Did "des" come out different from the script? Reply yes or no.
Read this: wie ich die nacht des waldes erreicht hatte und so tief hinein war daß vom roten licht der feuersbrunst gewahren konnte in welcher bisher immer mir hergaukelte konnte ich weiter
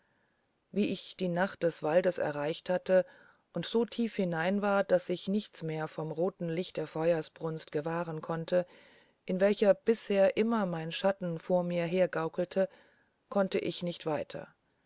no